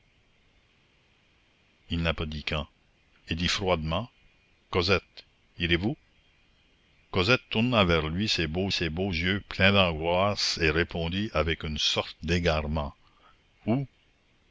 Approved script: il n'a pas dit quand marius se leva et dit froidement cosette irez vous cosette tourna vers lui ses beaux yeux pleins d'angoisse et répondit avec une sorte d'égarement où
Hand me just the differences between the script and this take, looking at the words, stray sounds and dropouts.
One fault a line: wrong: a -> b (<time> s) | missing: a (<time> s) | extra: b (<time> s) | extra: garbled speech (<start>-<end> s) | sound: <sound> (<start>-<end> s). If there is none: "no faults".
missing: marius se leva (2.6 s)
extra: ses beaux (8.7 s)